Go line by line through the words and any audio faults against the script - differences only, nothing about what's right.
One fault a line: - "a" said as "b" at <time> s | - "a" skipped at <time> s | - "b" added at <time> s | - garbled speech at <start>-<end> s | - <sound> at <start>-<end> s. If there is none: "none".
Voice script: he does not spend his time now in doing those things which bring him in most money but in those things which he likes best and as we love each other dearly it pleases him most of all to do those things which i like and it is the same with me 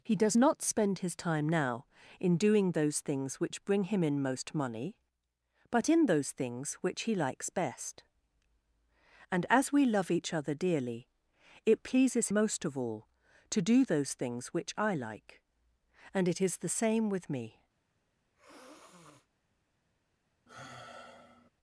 - "him" skipped at 12.3 s
- sniff at 18.3-19.3 s
- sigh at 20.5-21.5 s